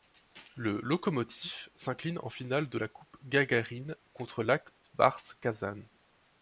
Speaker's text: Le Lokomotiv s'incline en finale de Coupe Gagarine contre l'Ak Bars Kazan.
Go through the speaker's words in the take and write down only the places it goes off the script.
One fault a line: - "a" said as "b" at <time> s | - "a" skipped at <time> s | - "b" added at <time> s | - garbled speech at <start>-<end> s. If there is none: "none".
- "la" added at 2.8 s